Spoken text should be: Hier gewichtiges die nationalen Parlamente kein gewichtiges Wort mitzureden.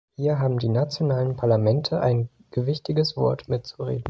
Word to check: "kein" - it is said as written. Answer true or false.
false